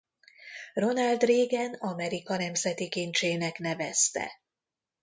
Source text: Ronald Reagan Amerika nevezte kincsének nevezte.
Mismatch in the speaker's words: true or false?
true